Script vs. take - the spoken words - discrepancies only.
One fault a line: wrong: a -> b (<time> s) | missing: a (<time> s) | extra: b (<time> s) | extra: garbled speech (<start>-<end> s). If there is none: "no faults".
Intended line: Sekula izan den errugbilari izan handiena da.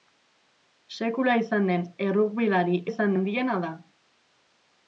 no faults